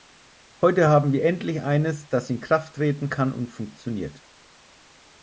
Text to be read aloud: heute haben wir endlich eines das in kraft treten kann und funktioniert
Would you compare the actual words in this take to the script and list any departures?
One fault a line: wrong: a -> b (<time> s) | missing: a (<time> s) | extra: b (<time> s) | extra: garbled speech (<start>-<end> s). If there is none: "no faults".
no faults